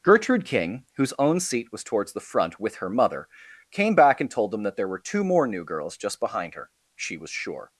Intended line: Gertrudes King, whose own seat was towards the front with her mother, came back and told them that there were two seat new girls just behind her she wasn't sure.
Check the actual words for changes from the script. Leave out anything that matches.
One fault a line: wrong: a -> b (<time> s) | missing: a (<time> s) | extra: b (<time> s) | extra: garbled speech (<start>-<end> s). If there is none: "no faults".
wrong: Gertrudes -> Gertrude (0.0 s)
wrong: seat -> more (5.2 s)
wrong: wasn't -> was (7.2 s)